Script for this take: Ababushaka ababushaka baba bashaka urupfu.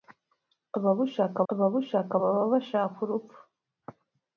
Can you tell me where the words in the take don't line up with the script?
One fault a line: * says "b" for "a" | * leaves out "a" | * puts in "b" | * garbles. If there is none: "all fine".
all fine